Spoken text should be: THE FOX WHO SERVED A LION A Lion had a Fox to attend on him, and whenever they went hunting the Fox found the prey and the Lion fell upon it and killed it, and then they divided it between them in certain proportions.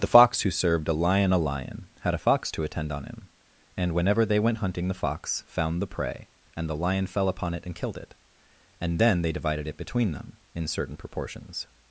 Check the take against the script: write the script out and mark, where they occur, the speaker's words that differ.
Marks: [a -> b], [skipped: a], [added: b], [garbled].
THE FOX WHO SERVED A LION A Lion had a Fox to attend on him, and whenever they went hunting the Fox found the prey and the Lion fell upon it and killed it, and then they divided it between them in certain proportions.